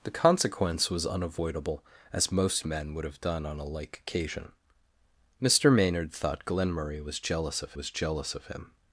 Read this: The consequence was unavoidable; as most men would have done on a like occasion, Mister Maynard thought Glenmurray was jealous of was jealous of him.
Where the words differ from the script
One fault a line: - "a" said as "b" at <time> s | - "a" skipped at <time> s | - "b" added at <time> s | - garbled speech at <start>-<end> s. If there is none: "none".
none